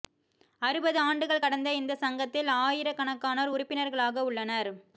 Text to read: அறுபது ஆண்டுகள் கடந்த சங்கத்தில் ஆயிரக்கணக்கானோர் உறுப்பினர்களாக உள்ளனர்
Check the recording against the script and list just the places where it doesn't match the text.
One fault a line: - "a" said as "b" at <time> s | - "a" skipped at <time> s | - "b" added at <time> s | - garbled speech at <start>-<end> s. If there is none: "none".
- "இந்த" added at 1.7 s